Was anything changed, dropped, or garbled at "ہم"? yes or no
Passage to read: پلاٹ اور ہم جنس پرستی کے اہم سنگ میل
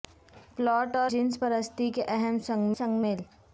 yes